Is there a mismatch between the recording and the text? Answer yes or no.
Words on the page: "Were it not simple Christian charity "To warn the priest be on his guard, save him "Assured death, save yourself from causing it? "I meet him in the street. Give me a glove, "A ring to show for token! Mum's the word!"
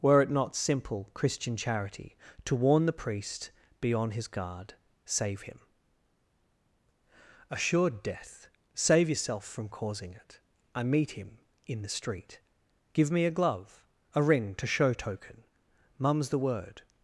yes